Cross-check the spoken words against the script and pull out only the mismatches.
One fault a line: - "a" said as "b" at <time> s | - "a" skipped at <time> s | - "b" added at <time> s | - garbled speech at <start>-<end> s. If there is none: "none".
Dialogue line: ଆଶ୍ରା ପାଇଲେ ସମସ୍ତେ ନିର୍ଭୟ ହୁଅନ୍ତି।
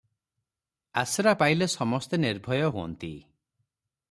none